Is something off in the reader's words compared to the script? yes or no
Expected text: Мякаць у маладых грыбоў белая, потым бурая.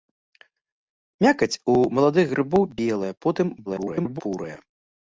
yes